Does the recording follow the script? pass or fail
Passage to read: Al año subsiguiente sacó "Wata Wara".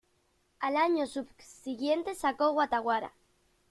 pass